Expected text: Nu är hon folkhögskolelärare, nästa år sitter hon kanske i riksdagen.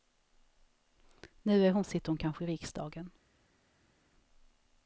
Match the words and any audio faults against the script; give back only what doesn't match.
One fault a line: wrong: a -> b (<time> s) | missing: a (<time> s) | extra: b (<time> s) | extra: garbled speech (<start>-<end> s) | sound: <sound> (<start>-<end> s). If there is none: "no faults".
missing: folkhögskolelärare nästa (1.8 s)